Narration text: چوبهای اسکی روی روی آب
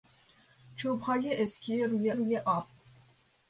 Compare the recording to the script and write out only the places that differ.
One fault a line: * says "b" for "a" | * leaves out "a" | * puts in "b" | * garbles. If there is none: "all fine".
all fine